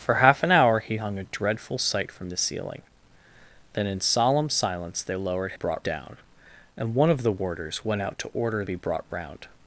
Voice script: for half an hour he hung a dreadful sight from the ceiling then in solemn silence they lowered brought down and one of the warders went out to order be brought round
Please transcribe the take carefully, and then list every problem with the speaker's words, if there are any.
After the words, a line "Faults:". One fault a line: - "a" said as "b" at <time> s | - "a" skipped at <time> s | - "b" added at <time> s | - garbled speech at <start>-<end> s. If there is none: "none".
for half an hour he hung a dreadful sight from the ceiling then in solemn silence they lowered brought down and one of the warders went out to order be brought round
Faults:
none